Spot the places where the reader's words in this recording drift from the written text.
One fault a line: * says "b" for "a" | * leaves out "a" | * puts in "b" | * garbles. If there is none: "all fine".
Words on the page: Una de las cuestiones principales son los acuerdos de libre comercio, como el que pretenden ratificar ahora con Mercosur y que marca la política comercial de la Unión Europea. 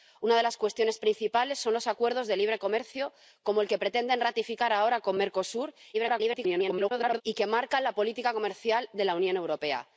* garbles